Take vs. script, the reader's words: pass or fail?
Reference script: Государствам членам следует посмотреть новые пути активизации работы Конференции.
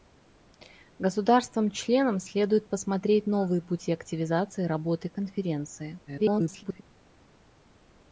fail